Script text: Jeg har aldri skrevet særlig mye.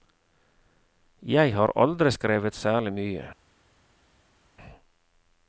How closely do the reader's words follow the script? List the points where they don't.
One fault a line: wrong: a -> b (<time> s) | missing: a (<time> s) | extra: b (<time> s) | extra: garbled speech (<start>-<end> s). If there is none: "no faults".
no faults